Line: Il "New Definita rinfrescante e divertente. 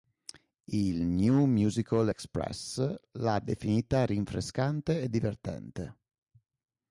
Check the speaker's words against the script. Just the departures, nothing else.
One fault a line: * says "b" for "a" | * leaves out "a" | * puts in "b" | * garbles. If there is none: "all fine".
* puts in "Musical Express l'ha"